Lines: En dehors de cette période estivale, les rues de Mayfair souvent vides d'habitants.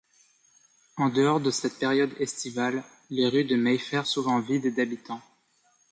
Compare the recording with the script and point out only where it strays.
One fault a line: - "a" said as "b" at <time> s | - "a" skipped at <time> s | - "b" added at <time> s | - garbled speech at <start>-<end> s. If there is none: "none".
none